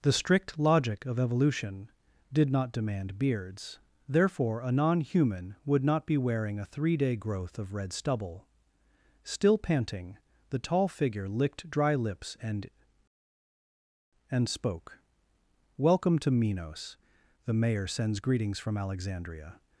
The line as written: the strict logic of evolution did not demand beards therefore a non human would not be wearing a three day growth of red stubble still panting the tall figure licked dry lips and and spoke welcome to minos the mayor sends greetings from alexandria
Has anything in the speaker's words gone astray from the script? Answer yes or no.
no